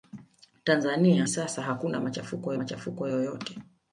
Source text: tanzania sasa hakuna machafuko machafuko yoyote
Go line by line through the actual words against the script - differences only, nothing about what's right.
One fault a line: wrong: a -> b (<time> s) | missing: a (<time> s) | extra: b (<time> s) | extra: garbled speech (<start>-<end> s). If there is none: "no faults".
no faults